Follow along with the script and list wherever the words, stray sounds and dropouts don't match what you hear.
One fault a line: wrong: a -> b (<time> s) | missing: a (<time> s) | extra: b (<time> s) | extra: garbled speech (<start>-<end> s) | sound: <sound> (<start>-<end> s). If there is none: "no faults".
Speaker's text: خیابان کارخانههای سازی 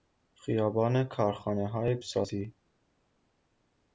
no faults